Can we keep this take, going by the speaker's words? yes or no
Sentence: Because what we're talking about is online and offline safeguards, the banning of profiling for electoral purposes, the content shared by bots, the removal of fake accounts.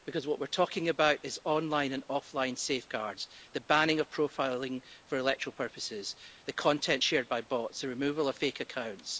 yes